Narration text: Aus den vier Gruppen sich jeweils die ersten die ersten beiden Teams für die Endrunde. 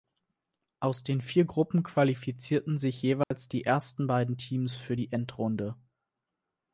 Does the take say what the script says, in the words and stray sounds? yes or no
no